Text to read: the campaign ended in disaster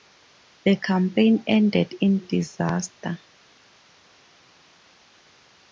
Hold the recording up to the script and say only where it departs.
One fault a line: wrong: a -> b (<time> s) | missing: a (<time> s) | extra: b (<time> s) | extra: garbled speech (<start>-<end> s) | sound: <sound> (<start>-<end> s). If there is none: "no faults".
no faults